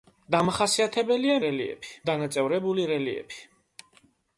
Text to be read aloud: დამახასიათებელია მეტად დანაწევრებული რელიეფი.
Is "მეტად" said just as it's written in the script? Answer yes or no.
no